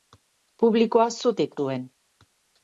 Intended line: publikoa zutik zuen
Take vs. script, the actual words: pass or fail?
pass